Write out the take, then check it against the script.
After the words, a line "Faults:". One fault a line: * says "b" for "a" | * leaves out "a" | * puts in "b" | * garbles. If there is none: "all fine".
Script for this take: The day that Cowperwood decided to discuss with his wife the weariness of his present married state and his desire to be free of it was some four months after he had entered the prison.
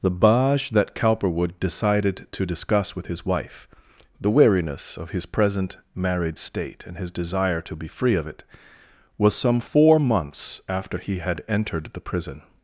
The baj that Cowperwood decided to discuss with his wife the weariness of his present married state and his desire to be free of it was some four months after he had entered the prison.
Faults:
* says "baj" for "day"